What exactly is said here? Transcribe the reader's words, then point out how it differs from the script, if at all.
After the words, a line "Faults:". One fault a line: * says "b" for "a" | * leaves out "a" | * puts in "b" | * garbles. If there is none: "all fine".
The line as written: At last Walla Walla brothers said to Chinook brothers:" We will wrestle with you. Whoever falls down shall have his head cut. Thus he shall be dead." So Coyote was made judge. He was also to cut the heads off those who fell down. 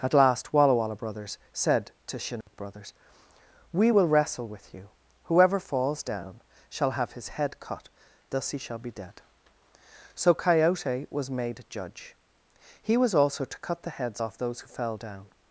At last Walla Walla brothers said to Chinook brothers:" We will wrestle with you. Whoever falls down shall have his head cut. Thus he shall be dead." So Coyote was made judge. He was also to cut the heads off those who fell down.
Faults:
all fine